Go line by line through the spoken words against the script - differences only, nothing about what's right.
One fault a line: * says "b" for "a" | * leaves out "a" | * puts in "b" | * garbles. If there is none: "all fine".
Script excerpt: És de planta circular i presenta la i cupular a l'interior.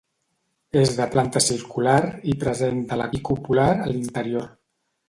all fine